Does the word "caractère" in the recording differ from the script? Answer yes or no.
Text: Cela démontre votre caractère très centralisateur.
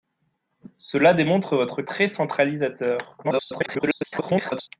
yes